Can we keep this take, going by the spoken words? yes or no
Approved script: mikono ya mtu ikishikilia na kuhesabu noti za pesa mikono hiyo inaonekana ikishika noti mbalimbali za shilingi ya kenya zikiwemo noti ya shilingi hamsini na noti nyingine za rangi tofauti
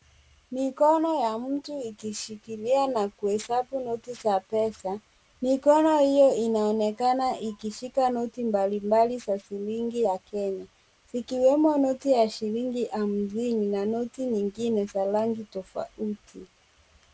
yes